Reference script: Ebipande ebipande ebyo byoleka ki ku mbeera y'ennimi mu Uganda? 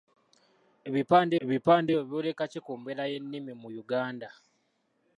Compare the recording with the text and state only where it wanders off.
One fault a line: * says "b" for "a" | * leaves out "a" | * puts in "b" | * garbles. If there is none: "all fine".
all fine